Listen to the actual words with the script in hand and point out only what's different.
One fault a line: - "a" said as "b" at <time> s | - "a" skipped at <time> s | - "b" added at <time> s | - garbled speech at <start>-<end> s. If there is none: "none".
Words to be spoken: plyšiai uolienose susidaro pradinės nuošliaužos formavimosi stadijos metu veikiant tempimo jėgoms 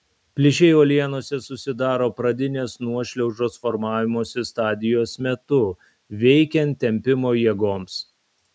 none